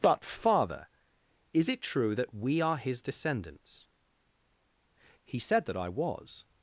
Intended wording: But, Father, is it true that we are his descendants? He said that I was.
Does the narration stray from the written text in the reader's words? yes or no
no